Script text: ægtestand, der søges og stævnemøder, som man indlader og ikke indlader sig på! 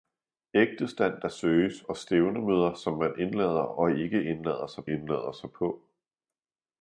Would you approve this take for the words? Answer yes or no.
no